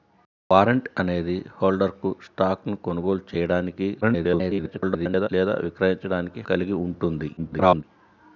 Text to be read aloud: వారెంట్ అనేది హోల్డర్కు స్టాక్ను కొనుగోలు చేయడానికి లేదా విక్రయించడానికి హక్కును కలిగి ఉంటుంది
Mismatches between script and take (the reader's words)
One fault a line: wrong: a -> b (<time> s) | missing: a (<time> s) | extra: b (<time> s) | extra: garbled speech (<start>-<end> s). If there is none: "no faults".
extra: garbled speech (4.0-5.3 s)
missing: హక్కును (6.4 s)
extra: garbled speech (7.4-7.8 s)